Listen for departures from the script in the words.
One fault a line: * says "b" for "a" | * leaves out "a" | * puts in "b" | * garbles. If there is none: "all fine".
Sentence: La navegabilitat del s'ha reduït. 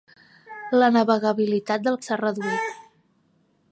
all fine